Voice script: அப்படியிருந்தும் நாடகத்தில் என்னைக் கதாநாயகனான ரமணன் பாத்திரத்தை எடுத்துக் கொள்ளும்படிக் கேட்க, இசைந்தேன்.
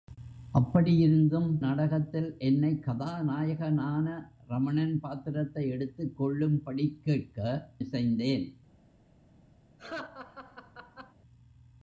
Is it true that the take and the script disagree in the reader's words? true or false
false